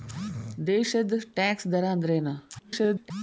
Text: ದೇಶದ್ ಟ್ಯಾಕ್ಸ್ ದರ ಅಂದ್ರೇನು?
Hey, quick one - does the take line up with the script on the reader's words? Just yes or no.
no